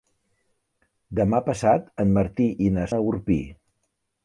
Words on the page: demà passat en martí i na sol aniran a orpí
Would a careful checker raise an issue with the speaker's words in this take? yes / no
yes